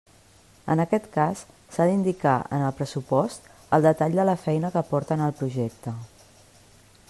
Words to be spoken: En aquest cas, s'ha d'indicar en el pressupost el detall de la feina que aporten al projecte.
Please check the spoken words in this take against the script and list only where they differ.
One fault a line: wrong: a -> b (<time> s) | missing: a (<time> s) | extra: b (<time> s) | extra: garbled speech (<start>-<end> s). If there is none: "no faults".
no faults